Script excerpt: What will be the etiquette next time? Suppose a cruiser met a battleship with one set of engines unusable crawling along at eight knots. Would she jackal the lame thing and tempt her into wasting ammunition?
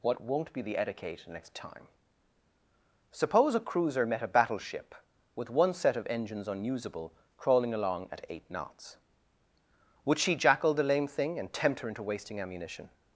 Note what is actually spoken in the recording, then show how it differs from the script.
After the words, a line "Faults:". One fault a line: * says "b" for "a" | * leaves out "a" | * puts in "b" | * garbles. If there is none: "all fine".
What won't be the etiquette next time? Suppose a cruiser met a battleship with one set of engines unusable crawling along at eight knots. Would she jackal the lame thing and tempt her into wasting ammunition?
Faults:
* says "won't" for "will"